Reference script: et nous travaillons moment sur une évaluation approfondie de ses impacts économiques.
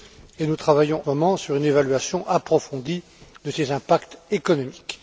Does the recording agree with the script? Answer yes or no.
yes